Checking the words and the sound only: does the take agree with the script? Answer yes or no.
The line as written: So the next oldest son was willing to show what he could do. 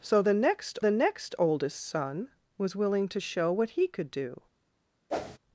no